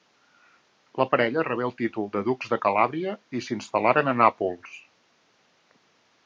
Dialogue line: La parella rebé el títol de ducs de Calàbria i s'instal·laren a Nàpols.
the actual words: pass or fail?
pass